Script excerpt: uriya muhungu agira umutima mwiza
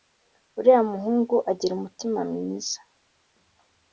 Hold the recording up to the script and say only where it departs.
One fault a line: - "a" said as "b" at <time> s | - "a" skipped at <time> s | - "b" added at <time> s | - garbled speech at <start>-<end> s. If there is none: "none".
none